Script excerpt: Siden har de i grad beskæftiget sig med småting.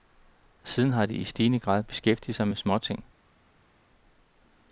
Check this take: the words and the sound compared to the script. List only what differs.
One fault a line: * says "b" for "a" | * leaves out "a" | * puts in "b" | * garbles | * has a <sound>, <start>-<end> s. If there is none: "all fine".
* puts in "stigende"